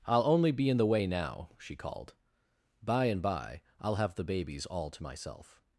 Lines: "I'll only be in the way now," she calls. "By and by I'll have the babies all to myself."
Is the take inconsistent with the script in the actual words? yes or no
yes